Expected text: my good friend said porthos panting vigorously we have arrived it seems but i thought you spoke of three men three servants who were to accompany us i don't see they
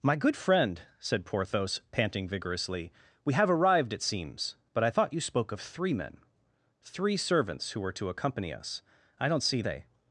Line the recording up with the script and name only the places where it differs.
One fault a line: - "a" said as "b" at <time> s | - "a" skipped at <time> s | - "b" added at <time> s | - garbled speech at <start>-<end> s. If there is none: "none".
none